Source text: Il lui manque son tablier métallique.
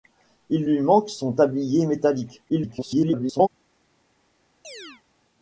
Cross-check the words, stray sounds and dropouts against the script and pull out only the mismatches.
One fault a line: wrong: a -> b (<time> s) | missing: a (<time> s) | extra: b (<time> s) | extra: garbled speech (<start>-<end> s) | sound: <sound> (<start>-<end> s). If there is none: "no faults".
extra: garbled speech (2.5-3.5 s)
sound: chirp (4.6-5.0 s)